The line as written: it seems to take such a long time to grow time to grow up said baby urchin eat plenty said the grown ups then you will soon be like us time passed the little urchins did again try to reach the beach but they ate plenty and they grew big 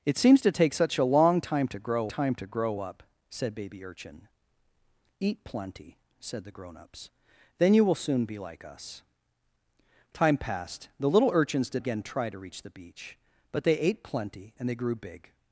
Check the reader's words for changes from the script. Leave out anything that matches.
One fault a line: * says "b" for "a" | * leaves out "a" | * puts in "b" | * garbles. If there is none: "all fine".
all fine